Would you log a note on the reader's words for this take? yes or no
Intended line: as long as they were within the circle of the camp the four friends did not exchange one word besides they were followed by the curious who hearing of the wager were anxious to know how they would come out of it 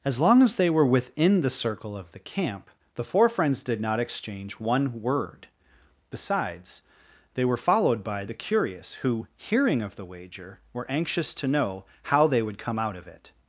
no